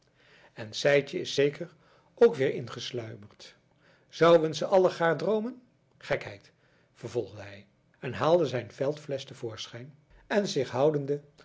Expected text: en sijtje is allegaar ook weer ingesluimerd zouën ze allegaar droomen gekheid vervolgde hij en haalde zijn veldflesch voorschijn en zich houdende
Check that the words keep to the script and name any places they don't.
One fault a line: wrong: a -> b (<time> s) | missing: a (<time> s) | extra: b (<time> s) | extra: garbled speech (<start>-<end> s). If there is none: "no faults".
wrong: allegaar -> zeker (1.3 s)
extra: te (9.2 s)